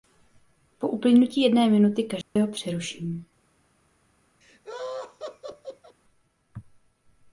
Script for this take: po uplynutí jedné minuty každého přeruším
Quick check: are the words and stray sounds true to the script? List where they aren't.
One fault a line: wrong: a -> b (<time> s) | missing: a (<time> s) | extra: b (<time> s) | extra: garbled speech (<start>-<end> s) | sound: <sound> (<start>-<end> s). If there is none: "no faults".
sound: dropout (2.2-2.4 s)
sound: laugh (4.4-6.0 s)